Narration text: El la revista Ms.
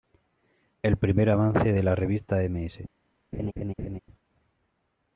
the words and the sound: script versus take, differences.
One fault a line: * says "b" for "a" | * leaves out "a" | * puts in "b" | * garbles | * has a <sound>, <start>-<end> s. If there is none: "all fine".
* puts in "primer avance de"
* has a laugh, 3.3-4.0 s